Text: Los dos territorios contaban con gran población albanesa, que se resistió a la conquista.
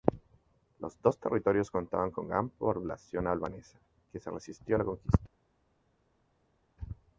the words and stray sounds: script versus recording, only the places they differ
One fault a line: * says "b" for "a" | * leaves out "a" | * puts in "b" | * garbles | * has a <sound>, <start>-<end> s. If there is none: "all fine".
all fine